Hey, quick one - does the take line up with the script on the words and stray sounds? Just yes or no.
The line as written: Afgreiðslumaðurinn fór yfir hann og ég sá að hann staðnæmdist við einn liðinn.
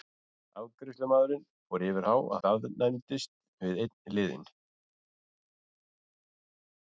no